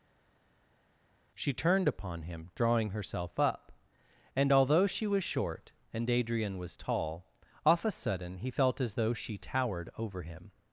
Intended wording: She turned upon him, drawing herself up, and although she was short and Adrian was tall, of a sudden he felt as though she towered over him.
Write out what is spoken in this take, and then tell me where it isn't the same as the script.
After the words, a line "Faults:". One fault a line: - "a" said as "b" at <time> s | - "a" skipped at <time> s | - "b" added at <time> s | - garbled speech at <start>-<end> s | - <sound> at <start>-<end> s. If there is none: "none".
She turned upon him, drawing herself up, and although she was short and Adrian was tall, off a sudden he felt as though she towered over him.
Faults:
- "of" said as "off" at 7.7 s